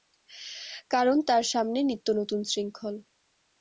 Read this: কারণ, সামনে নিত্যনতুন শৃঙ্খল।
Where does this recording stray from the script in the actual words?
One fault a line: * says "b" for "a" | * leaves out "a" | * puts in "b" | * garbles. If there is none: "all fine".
* puts in "তার"